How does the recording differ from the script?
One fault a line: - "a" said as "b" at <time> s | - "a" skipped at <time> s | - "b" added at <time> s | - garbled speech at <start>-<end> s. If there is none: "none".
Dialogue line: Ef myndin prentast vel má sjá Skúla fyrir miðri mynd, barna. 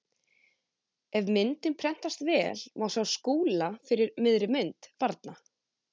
none